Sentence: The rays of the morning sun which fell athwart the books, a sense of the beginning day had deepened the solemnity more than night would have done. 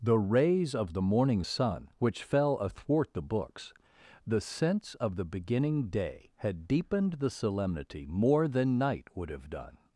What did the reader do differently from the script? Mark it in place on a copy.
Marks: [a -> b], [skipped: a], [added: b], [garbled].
The rays of the morning sun which fell athwart the books, [a -> the] sense of the beginning day had deepened the solemnity more than night would have done.